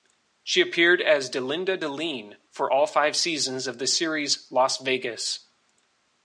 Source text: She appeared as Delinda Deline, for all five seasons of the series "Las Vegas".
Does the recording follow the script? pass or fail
pass